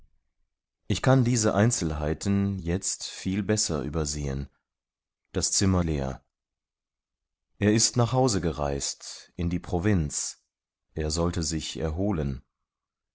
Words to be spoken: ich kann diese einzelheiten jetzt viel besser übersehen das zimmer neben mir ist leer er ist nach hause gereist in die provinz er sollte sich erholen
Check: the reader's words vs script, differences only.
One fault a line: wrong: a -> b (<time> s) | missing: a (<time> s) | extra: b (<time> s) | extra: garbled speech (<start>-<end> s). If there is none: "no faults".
missing: neben mir ist (5.8 s)